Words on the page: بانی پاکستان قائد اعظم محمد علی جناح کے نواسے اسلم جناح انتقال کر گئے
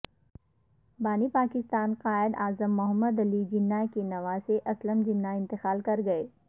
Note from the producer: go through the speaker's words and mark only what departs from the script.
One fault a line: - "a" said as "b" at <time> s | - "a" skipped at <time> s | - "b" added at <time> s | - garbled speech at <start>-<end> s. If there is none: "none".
none